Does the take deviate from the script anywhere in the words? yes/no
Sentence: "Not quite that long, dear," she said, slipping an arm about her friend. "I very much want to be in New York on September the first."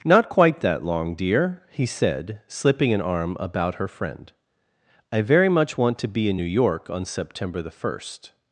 yes